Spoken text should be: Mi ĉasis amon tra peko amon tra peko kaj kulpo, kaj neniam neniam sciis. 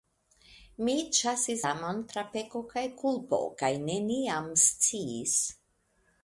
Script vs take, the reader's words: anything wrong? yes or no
yes